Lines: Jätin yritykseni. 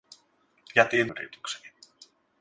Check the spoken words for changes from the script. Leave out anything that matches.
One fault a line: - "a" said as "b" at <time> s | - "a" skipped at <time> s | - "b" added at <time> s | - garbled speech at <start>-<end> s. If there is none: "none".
none